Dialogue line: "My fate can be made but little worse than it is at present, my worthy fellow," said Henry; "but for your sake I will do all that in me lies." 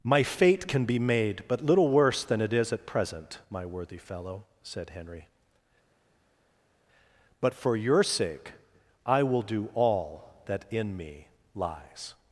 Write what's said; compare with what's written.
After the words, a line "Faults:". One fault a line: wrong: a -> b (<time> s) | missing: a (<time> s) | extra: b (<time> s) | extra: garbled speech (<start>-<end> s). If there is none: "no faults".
"My fate can be made but little worse than it is at present, my worthy fellow," said Henry; "but for your sake I will do all that in me lies."
Faults:
no faults